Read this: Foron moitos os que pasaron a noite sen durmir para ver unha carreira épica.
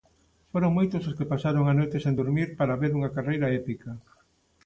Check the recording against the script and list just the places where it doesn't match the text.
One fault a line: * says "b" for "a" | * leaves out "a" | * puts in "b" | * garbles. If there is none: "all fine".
all fine